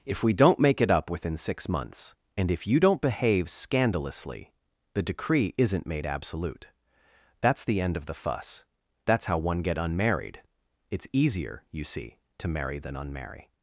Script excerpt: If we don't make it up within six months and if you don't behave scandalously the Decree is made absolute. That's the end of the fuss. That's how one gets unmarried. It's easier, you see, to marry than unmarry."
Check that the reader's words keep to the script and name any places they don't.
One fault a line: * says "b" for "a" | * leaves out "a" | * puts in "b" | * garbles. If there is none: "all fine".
* says "isn't" for "is"
* says "get" for "gets"